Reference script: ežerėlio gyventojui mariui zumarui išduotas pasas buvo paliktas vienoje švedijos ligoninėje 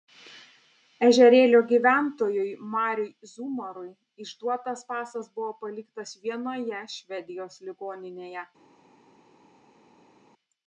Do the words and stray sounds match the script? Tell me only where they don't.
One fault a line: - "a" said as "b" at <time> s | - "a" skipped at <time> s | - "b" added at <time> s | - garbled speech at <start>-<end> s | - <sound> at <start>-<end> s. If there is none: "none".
none